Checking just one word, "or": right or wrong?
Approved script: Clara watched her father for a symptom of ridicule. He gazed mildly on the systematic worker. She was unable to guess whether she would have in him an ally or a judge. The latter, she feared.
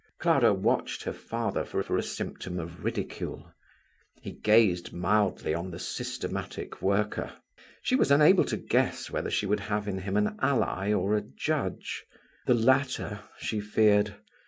right